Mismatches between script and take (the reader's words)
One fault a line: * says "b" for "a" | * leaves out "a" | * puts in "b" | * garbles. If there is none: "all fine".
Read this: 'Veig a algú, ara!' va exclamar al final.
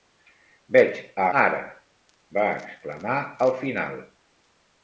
* leaves out "algú"